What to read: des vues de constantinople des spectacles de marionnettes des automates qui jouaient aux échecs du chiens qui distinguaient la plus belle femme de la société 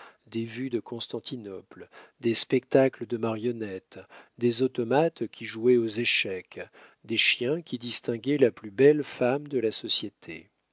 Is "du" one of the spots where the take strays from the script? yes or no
yes